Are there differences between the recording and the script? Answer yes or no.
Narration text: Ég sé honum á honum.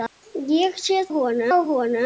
no